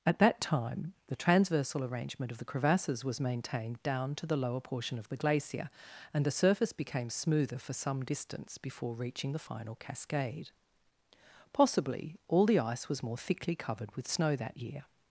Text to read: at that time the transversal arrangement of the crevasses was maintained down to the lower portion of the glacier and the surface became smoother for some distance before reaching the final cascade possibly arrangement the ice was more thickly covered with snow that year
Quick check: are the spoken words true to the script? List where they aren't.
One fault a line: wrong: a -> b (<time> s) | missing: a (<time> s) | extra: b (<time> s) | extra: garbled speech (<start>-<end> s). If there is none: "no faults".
wrong: arrangement -> all (12.3 s)